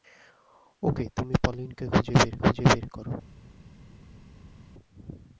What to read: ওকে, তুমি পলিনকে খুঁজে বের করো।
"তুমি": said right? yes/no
yes